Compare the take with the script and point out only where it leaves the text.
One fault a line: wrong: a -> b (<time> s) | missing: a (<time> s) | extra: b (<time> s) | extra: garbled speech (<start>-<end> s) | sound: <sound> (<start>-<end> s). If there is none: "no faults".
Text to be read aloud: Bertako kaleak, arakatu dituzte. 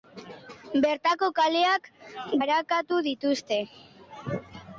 no faults